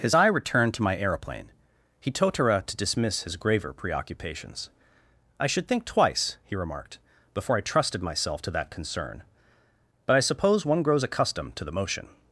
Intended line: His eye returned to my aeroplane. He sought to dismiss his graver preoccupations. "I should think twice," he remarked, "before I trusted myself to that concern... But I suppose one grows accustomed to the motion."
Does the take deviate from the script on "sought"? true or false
true